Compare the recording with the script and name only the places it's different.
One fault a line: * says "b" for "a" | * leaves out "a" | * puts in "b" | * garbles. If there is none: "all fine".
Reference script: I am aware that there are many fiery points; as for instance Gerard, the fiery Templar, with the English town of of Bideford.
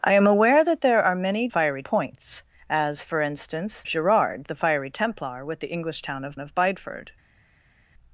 all fine